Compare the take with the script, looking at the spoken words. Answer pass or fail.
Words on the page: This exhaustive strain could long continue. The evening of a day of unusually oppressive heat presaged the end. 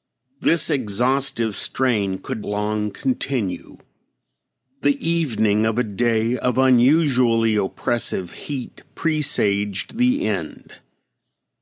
pass